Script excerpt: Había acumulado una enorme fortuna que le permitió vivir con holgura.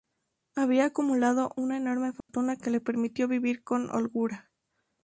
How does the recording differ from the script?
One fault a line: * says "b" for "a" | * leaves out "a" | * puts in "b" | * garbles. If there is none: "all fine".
all fine